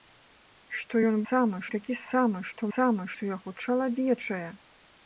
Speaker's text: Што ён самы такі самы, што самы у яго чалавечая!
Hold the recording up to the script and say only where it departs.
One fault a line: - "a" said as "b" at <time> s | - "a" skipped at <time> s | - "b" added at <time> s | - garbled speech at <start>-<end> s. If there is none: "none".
none